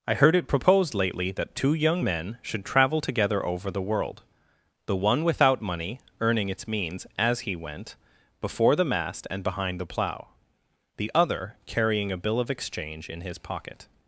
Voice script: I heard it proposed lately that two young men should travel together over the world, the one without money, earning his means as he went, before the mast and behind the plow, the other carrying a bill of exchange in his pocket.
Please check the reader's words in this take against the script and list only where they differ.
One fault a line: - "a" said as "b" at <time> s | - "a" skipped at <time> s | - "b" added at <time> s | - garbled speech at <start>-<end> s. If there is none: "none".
- "his" said as "its" at 6.5 s